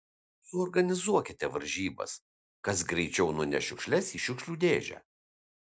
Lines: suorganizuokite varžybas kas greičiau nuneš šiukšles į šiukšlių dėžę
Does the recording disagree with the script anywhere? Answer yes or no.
no